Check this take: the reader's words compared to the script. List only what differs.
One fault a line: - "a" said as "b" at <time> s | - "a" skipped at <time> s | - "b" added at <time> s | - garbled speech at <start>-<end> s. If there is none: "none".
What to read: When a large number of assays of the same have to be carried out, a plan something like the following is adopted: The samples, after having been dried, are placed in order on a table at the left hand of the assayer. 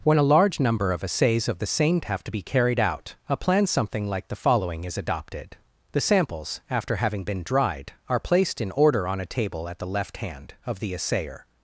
none